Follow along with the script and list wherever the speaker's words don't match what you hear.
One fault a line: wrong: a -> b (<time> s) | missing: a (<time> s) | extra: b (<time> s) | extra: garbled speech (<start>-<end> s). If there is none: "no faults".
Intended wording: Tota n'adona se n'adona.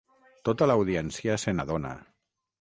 wrong: n'adona -> l'audiència (0.7 s)